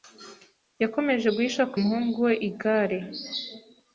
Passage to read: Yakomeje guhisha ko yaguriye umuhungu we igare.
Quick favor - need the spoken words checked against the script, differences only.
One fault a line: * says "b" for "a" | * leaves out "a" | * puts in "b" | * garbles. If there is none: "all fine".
* leaves out "yaguriye"